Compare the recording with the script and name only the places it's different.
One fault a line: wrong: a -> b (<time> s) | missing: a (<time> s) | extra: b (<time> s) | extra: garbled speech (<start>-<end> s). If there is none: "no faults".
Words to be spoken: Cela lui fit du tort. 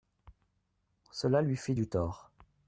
no faults